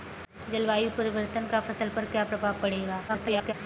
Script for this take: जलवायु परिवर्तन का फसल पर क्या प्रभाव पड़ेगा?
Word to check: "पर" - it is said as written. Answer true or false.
true